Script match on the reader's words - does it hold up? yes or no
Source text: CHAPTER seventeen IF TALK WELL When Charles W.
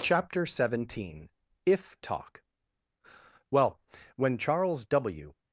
yes